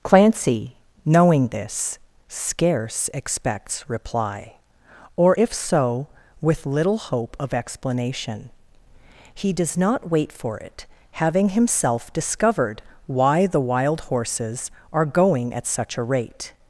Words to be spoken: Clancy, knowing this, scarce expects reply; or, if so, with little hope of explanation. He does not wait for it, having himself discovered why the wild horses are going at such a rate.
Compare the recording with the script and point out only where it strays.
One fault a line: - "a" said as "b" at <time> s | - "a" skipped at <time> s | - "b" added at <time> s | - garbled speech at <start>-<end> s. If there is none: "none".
none